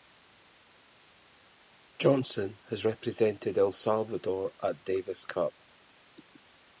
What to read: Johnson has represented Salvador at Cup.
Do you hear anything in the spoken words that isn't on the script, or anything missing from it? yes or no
yes